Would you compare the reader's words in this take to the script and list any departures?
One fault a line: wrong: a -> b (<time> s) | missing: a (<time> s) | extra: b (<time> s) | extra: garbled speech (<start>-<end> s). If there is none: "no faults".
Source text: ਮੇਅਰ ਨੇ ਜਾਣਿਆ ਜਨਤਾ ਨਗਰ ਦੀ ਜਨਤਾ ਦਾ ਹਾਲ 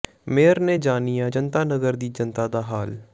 no faults